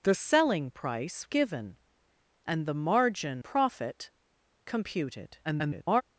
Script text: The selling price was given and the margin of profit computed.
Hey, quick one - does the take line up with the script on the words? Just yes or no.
no